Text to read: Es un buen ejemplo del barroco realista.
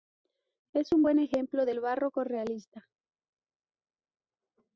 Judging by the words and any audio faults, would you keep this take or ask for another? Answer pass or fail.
pass